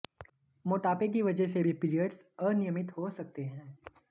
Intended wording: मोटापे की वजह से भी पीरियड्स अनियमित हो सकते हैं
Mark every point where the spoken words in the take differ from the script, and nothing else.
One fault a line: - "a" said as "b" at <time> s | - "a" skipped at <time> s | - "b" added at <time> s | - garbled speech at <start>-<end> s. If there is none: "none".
none